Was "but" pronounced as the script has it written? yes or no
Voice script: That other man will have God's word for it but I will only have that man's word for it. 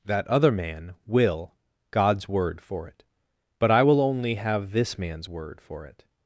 yes